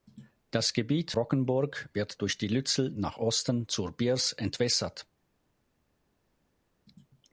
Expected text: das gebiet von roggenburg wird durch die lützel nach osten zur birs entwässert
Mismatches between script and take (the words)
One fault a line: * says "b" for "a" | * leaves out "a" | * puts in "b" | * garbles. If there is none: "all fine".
* leaves out "von"